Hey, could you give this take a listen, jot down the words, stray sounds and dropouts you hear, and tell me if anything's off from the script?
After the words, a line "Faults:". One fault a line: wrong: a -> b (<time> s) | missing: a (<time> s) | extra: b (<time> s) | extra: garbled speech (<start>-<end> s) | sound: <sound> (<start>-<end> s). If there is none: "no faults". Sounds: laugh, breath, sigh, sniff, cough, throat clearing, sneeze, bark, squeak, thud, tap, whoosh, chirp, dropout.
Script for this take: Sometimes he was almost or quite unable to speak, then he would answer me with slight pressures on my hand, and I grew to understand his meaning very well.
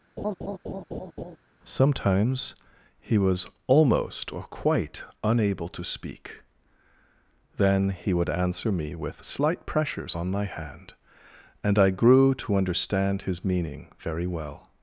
Sometimes he was almost or quite unable to speak, then he would answer me with slight pressures on my hand, and I grew to understand his meaning very well.
Faults:
sound: laugh (0.2-1.4 s)